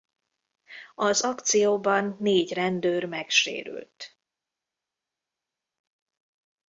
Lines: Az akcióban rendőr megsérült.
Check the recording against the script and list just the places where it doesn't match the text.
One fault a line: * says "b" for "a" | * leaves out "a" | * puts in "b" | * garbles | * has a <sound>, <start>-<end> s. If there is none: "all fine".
* puts in "négy"